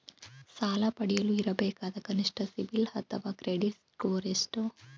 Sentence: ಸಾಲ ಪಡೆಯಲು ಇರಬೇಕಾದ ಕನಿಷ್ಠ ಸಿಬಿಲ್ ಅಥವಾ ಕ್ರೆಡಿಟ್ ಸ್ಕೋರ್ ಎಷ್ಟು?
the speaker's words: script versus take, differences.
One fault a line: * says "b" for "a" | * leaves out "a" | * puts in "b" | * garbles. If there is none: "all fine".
all fine